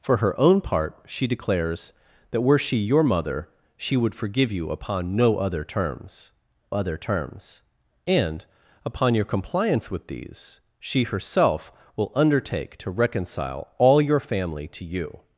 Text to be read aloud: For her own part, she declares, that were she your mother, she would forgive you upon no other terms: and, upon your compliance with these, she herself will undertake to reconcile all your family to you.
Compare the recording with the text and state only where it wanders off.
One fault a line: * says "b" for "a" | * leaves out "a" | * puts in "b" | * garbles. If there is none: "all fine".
* puts in "other terms"